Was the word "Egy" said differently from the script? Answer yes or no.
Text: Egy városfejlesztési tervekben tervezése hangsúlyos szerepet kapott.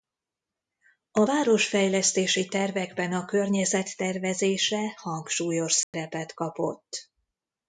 yes